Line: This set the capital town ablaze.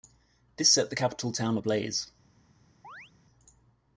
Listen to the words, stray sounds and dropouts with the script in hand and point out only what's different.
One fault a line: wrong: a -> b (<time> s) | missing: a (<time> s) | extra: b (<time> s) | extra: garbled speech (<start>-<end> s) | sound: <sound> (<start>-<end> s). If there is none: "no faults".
sound: chirp (2.8-3.1 s)